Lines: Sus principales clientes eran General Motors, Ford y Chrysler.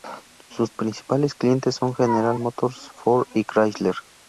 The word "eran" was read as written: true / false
false